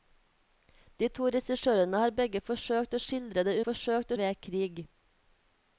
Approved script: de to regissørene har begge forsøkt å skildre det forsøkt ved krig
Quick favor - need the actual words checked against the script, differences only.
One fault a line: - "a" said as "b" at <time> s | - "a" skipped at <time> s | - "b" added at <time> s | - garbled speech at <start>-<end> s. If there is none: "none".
none